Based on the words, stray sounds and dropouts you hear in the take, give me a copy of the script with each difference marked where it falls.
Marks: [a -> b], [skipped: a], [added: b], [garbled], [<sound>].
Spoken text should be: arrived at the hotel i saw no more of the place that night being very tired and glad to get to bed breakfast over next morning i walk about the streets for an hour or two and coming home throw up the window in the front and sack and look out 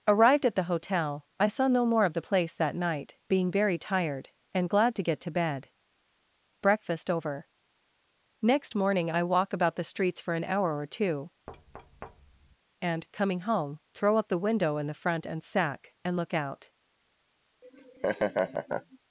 arrived at the hotel i saw no more of the place that night being very tired and glad to get to bed breakfast over next morning i walk about the streets for an hour or two [thud] and coming home throw up the window in the front and sack and look out [laugh]